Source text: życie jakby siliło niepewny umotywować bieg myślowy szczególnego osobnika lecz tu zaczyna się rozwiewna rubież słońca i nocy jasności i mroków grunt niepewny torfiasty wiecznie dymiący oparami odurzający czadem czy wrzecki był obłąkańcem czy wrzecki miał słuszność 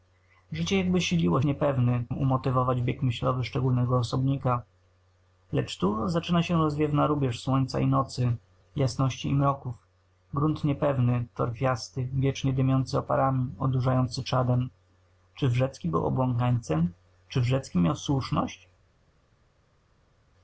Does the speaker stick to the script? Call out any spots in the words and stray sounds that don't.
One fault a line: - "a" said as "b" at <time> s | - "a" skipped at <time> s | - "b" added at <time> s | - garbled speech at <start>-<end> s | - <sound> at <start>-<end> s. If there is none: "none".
none